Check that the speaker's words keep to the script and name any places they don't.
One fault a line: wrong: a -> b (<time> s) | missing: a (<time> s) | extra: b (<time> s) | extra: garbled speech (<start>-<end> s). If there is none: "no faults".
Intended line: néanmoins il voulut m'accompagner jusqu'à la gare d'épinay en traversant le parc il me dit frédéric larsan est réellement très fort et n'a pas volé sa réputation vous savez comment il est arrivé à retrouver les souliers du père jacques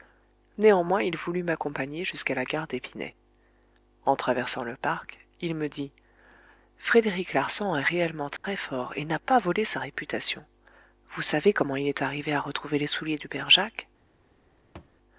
no faults